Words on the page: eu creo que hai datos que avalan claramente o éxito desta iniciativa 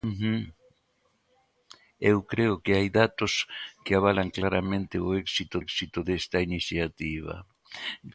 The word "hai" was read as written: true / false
true